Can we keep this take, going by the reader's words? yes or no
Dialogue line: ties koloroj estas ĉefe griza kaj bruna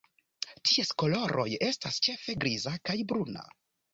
yes